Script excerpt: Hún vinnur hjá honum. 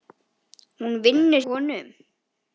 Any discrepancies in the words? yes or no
yes